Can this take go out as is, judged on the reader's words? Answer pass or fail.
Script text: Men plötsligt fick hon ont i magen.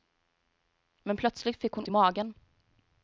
fail